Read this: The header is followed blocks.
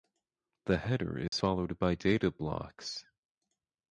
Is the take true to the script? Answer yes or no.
no